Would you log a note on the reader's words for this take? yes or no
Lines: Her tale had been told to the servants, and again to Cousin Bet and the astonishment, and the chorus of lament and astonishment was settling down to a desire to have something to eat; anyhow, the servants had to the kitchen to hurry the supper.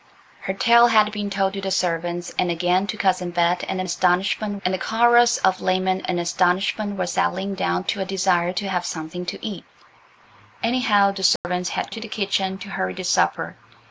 no